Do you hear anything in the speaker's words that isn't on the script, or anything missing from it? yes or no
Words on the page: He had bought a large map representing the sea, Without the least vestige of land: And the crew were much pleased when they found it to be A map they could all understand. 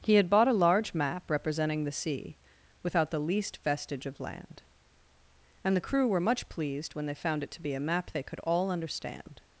no